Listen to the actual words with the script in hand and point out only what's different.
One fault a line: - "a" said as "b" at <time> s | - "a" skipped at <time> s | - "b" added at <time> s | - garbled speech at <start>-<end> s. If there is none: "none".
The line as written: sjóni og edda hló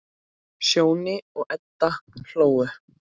none